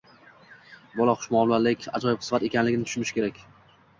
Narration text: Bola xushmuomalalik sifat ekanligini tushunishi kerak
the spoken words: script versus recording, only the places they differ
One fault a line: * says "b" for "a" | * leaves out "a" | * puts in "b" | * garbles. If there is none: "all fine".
* puts in "ajoyib"